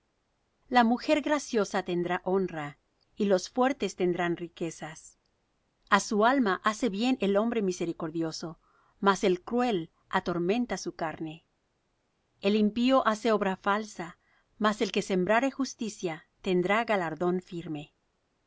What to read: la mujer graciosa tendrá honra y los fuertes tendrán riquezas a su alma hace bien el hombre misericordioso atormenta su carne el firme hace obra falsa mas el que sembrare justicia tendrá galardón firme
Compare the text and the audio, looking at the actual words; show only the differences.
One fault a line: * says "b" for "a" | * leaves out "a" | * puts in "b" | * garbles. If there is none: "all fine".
* puts in "mas el cruel"
* says "impío" for "firme"